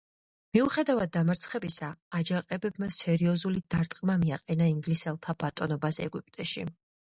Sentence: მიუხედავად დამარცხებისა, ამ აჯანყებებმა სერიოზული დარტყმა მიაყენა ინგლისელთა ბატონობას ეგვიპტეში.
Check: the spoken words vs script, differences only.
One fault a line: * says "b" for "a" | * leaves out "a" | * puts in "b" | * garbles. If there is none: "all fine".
* leaves out "ამ"